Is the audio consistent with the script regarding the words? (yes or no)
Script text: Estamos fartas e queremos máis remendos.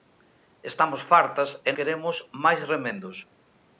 yes